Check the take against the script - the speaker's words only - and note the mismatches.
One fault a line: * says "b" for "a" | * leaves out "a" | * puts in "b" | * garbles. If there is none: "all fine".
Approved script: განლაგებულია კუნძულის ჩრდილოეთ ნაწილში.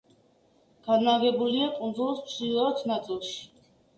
all fine